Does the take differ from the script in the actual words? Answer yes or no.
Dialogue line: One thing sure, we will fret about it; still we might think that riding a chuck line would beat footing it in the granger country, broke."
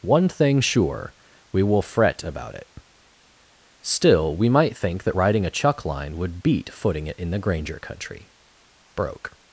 no